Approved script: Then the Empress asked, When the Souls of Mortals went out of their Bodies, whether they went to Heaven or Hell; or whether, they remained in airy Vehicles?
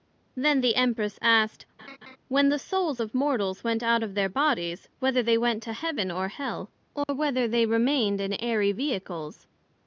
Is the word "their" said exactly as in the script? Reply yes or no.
yes